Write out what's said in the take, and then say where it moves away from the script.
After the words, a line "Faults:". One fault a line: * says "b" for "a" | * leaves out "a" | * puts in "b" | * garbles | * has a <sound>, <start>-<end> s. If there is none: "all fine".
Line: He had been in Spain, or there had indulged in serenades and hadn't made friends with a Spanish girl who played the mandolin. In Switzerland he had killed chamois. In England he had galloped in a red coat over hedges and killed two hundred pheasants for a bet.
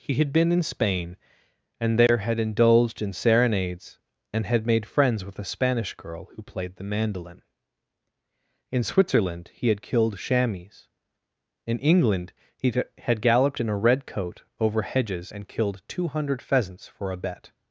He had been in Spain, and there had indulged in serenades and had made friends with a Spanish girl who played the mandolin. In Switzerland he had killed chamois. In England he had galloped in a red coat over hedges and killed two hundred pheasants for a bet.
Faults:
* says "and" for "or"
* says "had" for "hadn't"